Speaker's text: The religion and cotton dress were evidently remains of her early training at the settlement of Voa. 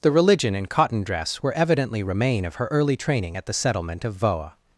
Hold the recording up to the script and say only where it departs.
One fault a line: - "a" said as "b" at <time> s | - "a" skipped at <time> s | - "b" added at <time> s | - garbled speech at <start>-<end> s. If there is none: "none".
- "remains" said as "remain" at 2.0 s